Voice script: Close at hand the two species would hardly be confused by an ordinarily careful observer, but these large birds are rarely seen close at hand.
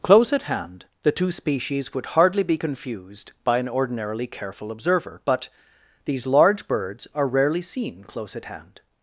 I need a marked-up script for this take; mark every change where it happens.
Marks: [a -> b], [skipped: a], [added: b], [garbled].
Close at hand the two species would hardly be confused by an ordinarily careful observer, but these large birds are rarely seen close at hand.